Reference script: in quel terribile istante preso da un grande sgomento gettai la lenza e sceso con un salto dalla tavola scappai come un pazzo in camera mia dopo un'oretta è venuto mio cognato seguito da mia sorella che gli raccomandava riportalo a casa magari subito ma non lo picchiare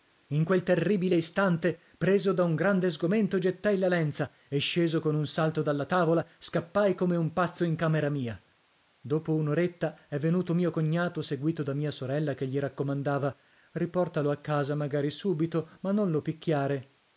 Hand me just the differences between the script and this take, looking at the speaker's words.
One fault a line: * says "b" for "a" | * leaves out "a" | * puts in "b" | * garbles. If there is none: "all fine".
all fine